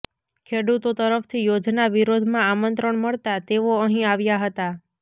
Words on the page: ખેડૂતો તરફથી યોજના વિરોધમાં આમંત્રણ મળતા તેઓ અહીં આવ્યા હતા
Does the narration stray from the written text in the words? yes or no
no